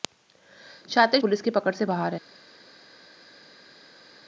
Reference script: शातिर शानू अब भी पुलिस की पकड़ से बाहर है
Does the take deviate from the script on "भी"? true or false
true